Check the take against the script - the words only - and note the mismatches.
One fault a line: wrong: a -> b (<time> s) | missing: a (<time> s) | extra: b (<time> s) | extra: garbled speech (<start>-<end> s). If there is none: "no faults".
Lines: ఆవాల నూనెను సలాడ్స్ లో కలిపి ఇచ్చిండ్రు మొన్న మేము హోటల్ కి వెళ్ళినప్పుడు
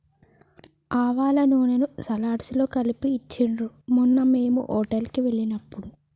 no faults